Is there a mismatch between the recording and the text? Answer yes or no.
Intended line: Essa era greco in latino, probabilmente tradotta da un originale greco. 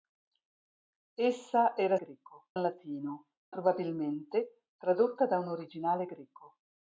no